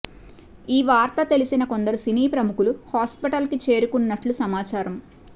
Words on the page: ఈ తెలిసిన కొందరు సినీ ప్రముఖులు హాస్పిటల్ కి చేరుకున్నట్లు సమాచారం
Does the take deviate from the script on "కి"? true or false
false